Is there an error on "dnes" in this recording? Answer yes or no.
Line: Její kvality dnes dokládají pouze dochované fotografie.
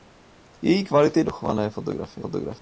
yes